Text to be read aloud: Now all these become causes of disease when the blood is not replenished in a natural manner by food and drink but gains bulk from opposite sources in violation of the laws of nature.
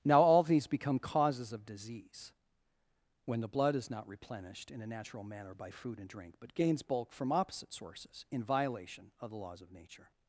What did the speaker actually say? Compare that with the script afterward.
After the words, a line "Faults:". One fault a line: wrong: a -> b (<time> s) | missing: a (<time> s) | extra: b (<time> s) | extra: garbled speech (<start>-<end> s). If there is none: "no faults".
Now all these become causes of disease when the blood is not replenished in a natural manner by food and drink but gains bulk from opposite sources in violation of the laws of nature.
Faults:
no faults